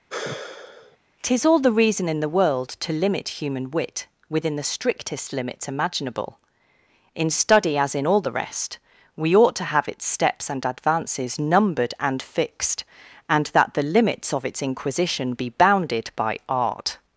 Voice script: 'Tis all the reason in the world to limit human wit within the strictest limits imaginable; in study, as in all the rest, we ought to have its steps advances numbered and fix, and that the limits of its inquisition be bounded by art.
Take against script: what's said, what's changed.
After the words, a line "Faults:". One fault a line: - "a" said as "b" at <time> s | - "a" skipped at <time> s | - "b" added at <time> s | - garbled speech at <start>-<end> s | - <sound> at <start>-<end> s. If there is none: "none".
'Tis all the reason in the world to limit human wit within the strictest limits imaginable; in study, as in all the rest, we ought to have its steps and advances numbered and fixed, and that the limits of its inquisition be bounded by art.
Faults:
- sigh at 0.1-1.0 s
- "and" added at 10.5 s
- "fix" said as "fixed" at 12.2 s